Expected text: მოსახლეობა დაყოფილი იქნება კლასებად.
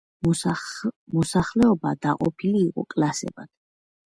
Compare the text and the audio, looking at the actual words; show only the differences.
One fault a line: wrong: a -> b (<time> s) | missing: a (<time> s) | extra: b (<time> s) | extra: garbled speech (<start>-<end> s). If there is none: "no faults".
wrong: იქნება -> იყო (2.7 s)